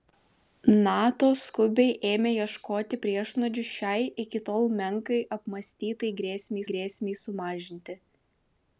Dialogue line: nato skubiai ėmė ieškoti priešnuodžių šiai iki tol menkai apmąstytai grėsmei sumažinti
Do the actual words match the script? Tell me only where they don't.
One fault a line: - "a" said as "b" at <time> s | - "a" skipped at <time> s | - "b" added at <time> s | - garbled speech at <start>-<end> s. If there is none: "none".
- "grėsmei" added at 6.7 s